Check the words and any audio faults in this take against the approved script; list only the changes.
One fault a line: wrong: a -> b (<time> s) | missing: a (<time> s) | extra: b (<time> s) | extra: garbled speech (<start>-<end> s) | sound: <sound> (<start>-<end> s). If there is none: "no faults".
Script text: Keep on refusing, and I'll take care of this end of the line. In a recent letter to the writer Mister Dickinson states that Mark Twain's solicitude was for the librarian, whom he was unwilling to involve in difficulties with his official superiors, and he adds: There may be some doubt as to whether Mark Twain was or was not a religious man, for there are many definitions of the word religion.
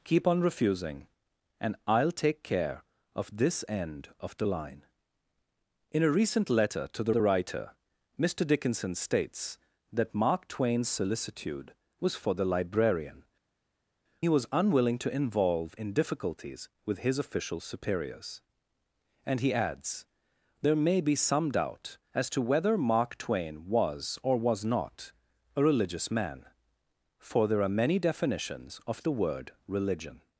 extra: the (7.1 s)
missing: whom (13.2 s)